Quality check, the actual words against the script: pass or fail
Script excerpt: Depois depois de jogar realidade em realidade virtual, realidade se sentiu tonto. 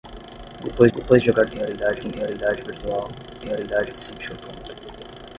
pass